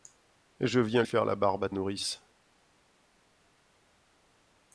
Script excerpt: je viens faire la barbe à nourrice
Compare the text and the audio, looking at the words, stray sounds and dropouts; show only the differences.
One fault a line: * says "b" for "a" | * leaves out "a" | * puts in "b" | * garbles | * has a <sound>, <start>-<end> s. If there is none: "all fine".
all fine